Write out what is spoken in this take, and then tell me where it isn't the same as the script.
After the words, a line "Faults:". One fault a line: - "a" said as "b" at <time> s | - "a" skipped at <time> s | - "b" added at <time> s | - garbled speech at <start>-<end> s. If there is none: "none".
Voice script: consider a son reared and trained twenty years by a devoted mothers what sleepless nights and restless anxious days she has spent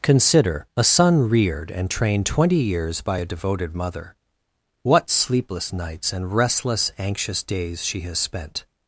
consider a son reared and trained twenty years by a devoted mother what sleepless nights and restless anxious days she has spent
Faults:
- "mothers" said as "mother" at 3.7 s